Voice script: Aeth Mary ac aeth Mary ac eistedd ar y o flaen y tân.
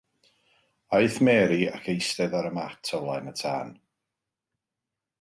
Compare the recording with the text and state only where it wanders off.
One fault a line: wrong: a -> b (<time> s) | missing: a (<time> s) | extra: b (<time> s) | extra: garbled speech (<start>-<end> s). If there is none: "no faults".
missing: aeth Mary ac (1.9 s)
extra: mat (2.6 s)